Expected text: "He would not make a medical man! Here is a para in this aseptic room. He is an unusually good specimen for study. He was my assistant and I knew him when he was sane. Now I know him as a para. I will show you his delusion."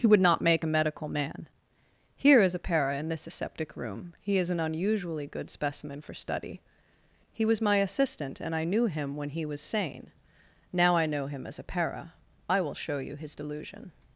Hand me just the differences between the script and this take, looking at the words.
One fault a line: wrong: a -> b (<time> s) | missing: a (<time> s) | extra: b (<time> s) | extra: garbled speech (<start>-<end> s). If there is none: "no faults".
no faults